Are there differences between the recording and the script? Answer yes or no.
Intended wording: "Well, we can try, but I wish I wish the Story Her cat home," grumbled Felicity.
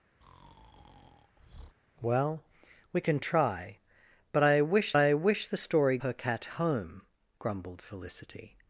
no